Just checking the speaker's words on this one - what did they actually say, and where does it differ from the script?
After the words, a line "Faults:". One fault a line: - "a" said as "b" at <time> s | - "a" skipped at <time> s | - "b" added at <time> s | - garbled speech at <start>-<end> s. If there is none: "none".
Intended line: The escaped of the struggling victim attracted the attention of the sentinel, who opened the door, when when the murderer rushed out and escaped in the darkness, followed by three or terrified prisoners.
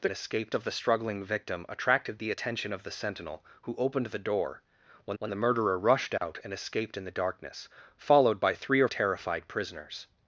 The escaped of the struggling victim attracted the attention of the sentinel, who opened the door, when when the murderer rushed out and escaped in the darkness, followed by three or terrified prisoners.
Faults:
none